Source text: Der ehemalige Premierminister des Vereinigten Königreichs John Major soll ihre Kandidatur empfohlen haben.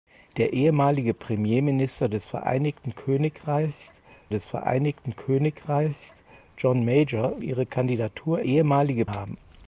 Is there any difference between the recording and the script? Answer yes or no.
yes